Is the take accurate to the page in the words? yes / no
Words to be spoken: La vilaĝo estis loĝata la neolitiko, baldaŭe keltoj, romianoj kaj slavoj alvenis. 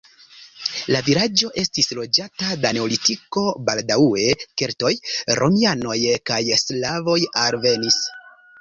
yes